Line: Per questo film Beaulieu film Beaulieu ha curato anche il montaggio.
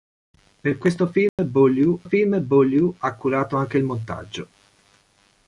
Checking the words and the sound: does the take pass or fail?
fail